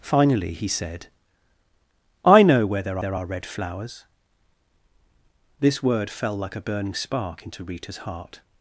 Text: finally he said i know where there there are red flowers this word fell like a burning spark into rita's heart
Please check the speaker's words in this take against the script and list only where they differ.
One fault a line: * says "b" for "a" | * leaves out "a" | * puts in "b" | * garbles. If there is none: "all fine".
all fine